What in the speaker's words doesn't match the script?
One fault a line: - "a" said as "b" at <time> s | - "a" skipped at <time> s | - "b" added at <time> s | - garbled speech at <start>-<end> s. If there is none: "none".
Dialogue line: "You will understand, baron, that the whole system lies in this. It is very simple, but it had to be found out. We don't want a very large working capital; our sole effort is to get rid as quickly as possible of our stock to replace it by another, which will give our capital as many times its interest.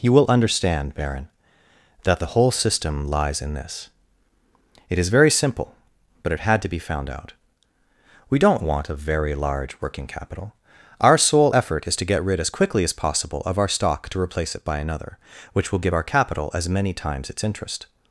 none